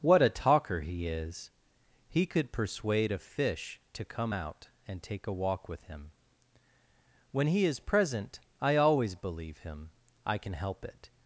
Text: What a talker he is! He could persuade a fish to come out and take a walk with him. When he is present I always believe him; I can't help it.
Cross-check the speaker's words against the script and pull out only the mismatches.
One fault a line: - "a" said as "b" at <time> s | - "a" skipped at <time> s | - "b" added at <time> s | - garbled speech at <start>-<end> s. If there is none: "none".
- "can't" said as "can" at 10.4 s